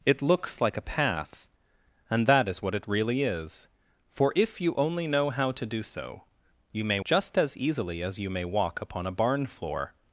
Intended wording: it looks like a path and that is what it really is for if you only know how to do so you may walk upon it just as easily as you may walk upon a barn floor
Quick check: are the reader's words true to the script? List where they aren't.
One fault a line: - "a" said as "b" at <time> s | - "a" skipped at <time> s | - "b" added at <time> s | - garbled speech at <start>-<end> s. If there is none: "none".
- "walk upon it" skipped at 7.0 s